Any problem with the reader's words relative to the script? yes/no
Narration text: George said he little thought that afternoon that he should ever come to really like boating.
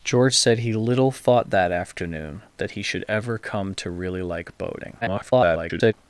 yes